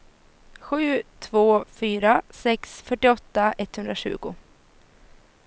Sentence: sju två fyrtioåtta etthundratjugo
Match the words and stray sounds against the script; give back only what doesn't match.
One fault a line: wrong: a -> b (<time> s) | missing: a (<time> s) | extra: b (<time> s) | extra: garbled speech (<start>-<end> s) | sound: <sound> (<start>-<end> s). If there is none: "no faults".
extra: fyra sex (1.7 s)